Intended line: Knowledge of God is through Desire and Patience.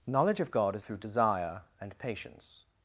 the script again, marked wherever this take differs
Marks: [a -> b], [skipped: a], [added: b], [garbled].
Knowledge of God is through Desire and Patience.